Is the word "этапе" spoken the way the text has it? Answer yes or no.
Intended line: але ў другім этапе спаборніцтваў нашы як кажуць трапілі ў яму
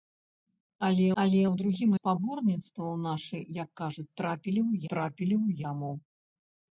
no